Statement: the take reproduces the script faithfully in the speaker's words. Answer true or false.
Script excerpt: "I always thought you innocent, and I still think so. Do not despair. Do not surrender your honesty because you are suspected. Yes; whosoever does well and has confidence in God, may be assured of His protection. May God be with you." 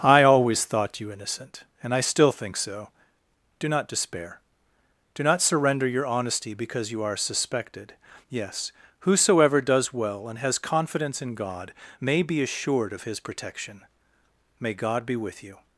true